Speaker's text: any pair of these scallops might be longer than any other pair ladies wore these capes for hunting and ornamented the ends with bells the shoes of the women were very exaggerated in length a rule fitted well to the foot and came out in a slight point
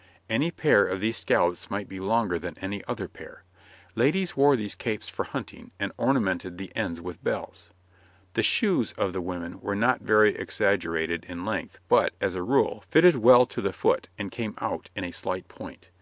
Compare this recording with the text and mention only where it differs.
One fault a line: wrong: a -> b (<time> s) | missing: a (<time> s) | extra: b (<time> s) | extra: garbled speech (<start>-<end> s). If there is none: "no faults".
extra: not (9.8 s)
extra: but as (11.9 s)